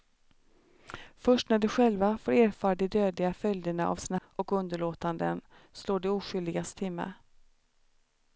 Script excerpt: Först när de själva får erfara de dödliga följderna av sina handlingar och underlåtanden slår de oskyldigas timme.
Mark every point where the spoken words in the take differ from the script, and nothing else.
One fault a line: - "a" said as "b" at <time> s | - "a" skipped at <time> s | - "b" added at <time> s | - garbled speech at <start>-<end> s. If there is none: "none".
- "handlingar" skipped at 4.2 s